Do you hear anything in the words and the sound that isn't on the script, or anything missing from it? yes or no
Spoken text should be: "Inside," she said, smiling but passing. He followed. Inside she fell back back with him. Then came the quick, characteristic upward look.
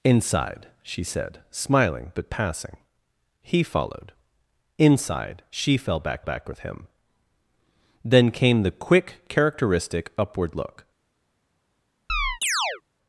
yes